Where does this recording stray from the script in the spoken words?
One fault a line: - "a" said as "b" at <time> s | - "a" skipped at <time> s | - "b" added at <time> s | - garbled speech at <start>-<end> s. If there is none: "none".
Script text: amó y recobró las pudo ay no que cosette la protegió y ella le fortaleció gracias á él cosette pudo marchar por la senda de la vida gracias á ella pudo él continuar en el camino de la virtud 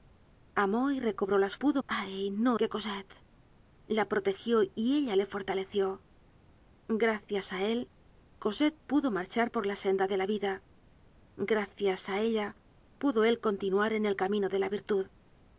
none